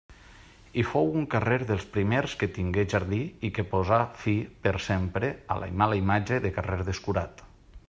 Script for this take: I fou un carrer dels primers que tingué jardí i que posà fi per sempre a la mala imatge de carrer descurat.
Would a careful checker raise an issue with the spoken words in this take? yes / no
no